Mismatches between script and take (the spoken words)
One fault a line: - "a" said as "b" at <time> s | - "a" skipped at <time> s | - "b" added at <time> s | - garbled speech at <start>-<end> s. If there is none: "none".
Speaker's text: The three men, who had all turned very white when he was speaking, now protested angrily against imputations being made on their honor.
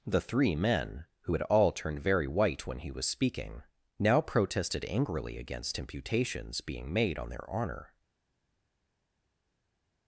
none